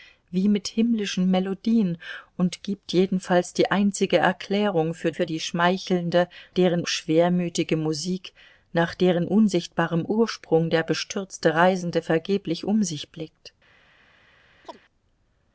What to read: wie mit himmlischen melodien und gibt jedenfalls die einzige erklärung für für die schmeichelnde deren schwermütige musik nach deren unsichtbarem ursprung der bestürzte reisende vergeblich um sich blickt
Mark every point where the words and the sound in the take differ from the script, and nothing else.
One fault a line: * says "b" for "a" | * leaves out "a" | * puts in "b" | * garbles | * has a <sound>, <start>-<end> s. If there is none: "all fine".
* has a chirp, 14.6-14.8 s